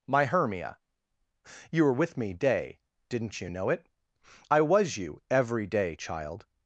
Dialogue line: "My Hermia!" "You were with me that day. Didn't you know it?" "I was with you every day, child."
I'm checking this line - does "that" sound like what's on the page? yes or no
no